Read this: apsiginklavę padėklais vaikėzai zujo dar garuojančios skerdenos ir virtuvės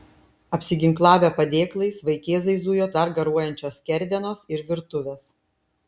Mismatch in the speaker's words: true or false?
false